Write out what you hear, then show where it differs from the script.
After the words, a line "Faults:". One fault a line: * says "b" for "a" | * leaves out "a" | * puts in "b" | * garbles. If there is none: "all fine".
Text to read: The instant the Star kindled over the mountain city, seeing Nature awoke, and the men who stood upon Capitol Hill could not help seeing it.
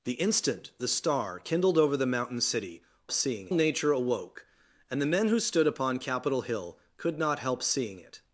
The instant the Star kindled over the mountain city, seeing Nature awoke, and the men who stood upon Capitol Hill could not help seeing it.
Faults:
all fine